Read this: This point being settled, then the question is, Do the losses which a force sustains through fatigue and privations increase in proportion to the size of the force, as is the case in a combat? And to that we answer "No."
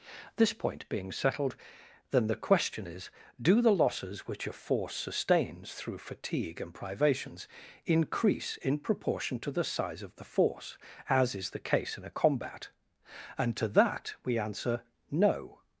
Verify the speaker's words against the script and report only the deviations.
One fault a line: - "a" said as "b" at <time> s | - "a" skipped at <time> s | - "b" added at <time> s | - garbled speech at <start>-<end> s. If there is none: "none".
none